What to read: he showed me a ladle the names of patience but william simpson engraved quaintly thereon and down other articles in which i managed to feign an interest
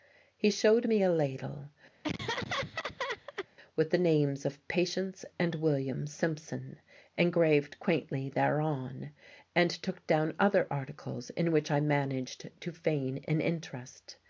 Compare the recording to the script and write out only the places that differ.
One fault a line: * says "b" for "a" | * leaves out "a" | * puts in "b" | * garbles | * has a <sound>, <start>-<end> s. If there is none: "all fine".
* has a laugh, 2.0-3.5 s
* puts in "with"
* says "and" for "but"
* puts in "took"